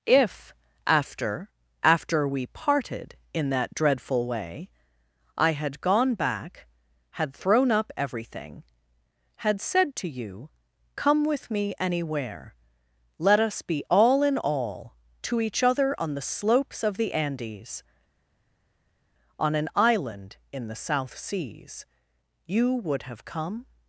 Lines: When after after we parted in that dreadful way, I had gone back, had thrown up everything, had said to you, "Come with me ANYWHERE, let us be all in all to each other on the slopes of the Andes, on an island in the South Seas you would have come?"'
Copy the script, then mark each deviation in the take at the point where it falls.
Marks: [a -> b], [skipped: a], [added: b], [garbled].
[When -> If] after after we parted in that dreadful way, I had gone back, had thrown up everything, had said to you, "Come with me ANYWHERE, let us be all in all to each other on the slopes of the Andes, on an island in the South Seas you would have come?"'